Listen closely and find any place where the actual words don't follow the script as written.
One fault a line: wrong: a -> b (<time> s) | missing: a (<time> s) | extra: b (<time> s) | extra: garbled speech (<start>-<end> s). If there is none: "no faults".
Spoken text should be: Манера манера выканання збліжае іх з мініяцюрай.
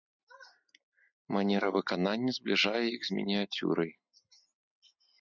missing: манера (1.7 s)